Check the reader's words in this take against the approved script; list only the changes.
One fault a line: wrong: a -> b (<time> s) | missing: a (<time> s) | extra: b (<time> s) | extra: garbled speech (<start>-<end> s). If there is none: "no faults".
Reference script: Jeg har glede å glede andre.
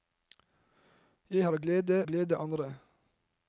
no faults